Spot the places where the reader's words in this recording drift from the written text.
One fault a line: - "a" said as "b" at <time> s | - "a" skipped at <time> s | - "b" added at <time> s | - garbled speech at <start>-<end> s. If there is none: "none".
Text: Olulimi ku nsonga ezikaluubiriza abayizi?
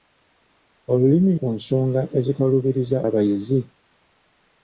none